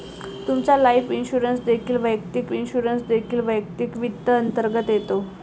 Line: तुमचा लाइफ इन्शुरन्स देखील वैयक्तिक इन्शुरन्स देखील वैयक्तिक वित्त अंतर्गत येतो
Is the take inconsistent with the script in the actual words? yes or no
no